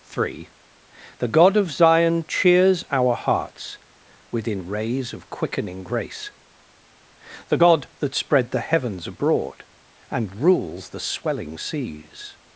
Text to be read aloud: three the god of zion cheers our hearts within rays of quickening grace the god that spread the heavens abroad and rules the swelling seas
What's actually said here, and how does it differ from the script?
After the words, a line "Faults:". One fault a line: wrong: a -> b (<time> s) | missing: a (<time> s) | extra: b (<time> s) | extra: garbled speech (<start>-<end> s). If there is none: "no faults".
three the god of zion cheers our hearts within rays of quickening grace the god that spread the heavens abroad and rules the swelling seas
Faults:
no faults